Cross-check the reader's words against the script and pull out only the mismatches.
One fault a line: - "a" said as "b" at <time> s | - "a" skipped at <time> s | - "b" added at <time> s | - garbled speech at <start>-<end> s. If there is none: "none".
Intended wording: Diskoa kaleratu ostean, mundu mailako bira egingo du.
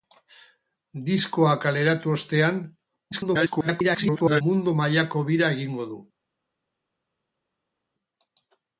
- garbled speech at 3.1-4.4 s